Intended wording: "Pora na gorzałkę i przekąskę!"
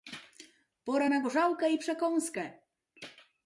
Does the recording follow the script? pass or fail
pass